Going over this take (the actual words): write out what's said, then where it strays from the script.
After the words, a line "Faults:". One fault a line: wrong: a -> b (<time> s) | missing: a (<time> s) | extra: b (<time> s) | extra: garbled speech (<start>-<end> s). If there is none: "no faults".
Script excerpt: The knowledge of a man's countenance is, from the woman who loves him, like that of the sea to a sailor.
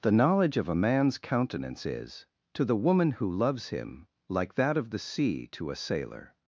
The knowledge of a man's countenance is, to the woman who loves him, like that of the sea to a sailor.
Faults:
wrong: from -> to (2.5 s)